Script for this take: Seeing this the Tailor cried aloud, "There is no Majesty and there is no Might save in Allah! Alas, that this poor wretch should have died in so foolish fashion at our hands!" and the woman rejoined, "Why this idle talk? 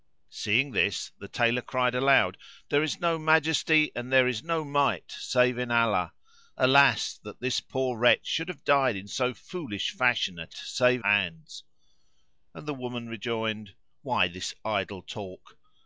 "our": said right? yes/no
no